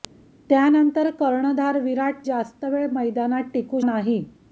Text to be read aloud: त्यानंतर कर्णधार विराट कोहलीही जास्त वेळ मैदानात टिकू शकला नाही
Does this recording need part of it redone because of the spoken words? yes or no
yes